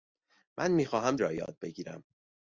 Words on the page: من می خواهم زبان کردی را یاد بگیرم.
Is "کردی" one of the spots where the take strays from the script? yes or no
yes